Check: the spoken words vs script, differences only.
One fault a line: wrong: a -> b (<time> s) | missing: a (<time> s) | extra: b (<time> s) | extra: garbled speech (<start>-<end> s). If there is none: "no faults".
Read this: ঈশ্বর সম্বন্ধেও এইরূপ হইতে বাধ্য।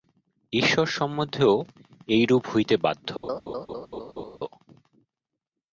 no faults